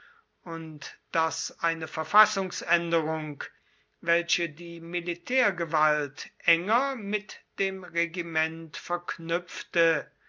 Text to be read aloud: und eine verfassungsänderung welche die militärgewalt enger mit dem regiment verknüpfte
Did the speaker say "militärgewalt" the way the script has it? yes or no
yes